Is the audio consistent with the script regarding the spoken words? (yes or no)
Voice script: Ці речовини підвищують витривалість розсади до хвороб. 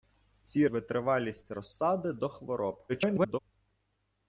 no